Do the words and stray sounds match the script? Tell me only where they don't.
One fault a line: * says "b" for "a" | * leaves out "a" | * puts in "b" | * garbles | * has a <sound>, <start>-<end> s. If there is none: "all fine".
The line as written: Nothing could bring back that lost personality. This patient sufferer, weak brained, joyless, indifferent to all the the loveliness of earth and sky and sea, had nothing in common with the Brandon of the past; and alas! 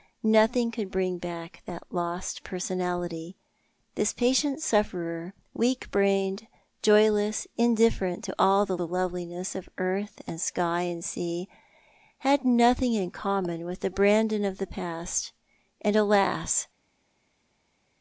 all fine